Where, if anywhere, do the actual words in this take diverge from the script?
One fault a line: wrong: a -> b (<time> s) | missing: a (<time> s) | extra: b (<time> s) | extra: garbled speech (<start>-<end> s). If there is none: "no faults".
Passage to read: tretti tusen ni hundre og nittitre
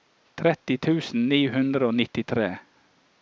no faults